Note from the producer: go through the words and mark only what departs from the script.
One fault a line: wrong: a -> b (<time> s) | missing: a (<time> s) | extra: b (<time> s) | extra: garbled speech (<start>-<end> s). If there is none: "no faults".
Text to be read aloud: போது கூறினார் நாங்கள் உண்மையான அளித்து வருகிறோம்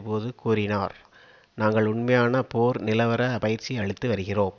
extra: போர் நிலவர பயிற்சி (2.4 s)